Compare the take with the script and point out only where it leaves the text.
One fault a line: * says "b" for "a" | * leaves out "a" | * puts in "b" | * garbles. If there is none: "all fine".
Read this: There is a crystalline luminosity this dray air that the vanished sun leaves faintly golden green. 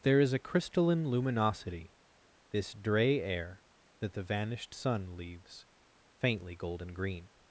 all fine